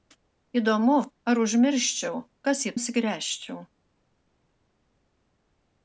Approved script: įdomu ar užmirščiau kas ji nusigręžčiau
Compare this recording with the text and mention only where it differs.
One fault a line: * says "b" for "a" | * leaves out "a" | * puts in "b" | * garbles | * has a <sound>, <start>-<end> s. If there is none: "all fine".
all fine